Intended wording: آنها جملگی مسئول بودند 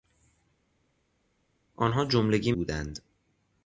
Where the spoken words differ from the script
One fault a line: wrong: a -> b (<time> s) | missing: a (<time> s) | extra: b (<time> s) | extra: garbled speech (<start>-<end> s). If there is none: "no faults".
missing: مسئول (2.5 s)